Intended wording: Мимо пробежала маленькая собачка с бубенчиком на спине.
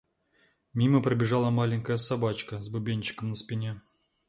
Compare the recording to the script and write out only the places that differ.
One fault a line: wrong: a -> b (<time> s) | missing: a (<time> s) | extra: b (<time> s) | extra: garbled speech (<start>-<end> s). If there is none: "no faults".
no faults